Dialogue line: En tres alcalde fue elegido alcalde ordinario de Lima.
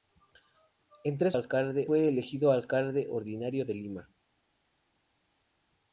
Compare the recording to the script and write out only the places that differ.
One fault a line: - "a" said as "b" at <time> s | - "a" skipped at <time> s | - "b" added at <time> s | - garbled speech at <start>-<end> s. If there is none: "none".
none